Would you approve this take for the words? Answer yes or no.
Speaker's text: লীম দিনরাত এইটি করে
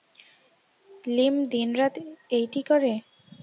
yes